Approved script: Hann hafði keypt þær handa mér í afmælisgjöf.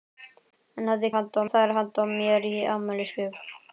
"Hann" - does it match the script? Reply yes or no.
yes